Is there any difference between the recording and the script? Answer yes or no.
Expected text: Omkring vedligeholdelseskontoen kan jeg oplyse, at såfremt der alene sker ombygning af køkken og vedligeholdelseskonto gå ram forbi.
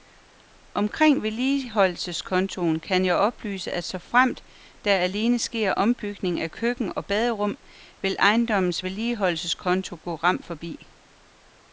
yes